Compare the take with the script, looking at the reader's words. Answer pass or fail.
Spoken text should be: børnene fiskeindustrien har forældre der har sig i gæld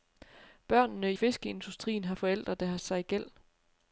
pass